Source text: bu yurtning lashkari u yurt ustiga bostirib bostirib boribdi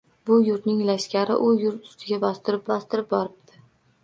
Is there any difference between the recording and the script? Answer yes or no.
no